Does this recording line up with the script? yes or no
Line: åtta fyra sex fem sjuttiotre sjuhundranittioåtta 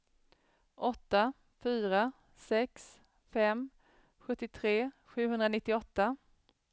yes